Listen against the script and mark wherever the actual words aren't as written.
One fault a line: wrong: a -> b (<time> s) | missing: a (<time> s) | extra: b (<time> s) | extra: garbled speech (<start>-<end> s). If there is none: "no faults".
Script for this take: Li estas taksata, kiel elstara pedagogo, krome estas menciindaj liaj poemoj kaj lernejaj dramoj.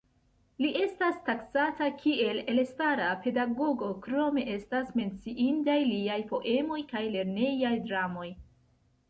no faults